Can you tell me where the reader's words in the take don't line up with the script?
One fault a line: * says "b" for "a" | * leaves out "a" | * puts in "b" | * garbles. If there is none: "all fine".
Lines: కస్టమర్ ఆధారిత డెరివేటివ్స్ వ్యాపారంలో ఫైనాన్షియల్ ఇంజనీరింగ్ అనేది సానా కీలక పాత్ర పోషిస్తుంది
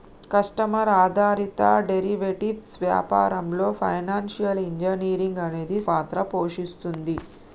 * leaves out "సానా కీలక"